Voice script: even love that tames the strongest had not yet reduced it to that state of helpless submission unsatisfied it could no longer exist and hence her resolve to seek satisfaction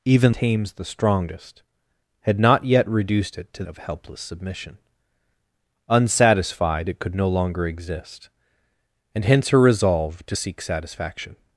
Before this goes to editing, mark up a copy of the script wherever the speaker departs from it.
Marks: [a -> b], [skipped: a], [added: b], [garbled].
even [skipped: love that] tames the strongest had not yet reduced it to [skipped: that state] of helpless submission unsatisfied it could no longer exist and hence her resolve to seek satisfaction